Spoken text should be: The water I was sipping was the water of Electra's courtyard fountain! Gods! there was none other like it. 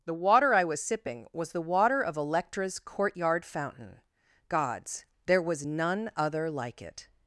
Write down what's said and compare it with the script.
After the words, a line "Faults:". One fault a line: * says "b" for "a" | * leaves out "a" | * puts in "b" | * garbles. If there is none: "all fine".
The water I was sipping was the water of Electra's courtyard fountain! Gods! there was none other like it.
Faults:
all fine